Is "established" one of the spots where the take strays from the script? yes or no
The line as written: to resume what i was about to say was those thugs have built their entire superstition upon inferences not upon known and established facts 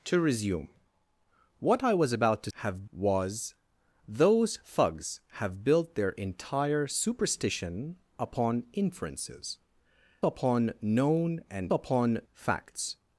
yes